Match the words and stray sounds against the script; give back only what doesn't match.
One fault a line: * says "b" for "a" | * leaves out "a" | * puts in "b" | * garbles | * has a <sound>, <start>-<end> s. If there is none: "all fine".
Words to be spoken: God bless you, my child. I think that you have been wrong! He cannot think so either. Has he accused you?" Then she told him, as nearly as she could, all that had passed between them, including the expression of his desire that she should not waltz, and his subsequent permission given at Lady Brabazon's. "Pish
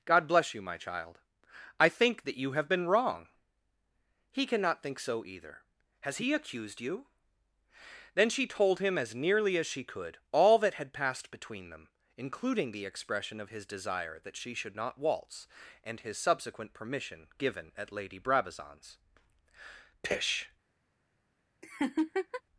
* has a laugh, 21.6-22.4 s